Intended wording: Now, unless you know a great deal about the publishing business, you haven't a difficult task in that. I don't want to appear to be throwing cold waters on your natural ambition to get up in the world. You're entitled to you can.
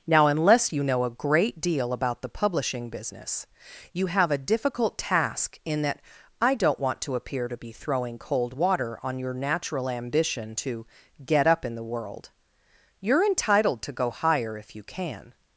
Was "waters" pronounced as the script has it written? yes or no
no